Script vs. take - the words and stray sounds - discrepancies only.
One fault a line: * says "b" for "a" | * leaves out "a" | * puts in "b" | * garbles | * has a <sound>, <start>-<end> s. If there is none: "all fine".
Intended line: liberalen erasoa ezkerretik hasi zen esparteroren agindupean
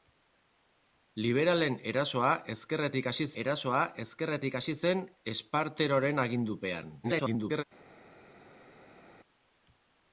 * puts in "erasoa ezkerretik hasi"
* garbles